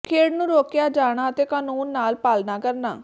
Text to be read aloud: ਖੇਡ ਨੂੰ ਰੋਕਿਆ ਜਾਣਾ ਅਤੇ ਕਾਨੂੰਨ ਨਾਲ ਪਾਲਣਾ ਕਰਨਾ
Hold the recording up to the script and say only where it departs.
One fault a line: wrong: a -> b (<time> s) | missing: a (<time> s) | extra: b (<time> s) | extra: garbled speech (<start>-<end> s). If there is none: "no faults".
no faults